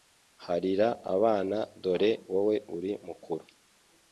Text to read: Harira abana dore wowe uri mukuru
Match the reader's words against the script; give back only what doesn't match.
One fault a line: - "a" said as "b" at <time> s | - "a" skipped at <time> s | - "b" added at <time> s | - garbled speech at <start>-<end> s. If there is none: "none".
none